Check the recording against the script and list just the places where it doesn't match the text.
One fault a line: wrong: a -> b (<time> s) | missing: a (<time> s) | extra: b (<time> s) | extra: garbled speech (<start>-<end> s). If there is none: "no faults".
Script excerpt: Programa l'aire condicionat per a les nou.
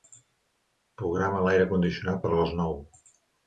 no faults